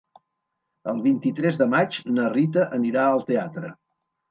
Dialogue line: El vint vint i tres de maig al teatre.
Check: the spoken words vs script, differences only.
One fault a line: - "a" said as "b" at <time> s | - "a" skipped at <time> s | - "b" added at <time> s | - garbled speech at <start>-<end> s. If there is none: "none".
- "vint" skipped at 1.2 s
- "na Rita anirà" added at 2.2 s